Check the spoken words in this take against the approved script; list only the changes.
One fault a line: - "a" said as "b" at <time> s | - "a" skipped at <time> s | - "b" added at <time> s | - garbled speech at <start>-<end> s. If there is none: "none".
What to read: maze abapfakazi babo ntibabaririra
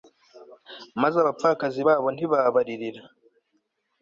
none